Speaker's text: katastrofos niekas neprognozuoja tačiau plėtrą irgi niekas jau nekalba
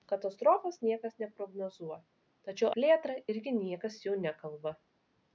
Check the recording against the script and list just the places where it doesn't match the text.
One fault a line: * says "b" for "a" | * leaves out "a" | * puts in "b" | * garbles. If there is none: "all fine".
all fine